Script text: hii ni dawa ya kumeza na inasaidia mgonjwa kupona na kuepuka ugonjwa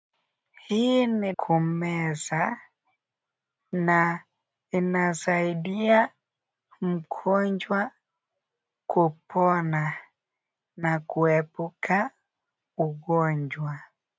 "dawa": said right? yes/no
no